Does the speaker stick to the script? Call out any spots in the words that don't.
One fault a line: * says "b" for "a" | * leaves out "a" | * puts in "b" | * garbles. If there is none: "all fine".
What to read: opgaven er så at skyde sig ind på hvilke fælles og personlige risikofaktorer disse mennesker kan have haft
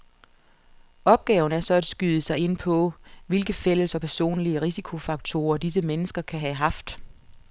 all fine